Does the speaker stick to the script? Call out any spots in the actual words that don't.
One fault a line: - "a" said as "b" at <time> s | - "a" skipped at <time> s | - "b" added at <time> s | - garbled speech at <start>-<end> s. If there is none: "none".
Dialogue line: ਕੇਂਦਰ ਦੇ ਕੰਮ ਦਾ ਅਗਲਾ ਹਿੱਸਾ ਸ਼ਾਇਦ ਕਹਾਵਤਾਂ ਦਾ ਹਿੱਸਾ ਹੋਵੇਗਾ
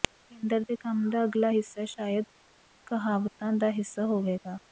none